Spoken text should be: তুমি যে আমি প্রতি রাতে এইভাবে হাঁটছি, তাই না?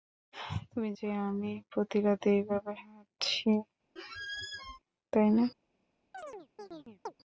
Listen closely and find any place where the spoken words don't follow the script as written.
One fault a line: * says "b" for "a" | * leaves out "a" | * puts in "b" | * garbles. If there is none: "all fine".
all fine